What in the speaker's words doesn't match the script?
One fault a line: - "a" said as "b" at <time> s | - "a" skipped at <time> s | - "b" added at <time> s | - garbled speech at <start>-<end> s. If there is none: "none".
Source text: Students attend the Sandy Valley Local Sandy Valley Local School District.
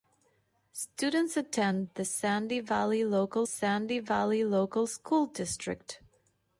none